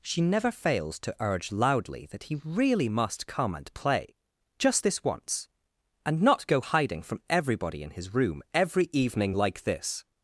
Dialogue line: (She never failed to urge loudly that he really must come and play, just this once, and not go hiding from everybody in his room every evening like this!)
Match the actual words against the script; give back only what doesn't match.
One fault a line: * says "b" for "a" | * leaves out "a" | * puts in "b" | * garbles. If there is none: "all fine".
* says "fails" for "failed"